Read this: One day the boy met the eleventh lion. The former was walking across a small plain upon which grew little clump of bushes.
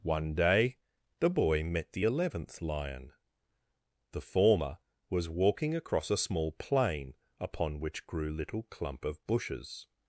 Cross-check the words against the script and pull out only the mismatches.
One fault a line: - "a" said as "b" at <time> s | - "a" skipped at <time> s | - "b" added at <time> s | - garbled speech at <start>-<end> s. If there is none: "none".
none